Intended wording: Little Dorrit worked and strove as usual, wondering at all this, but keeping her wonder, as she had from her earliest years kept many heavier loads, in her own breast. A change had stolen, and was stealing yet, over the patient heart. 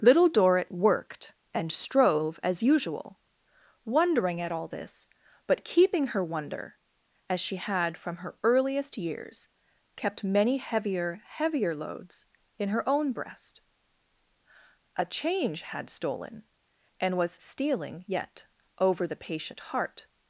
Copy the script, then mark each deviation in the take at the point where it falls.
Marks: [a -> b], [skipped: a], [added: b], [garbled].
Little Dorrit worked and strove as usual, wondering at all this, but keeping her wonder, as she had from her earliest years kept many heavier [added: heavier] loads, in her own breast. A change had stolen, and was stealing yet, over the patient heart.